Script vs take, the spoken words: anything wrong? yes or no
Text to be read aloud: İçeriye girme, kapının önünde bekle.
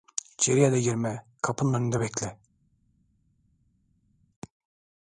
yes